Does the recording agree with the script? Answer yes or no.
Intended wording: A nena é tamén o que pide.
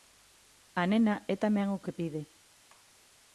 yes